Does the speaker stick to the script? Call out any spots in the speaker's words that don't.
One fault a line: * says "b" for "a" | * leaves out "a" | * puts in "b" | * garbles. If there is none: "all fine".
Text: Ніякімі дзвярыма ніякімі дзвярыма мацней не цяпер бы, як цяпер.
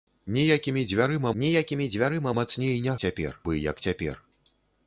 all fine